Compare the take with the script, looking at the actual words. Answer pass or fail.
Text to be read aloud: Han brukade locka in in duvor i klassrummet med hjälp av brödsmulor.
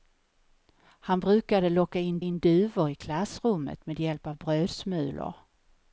pass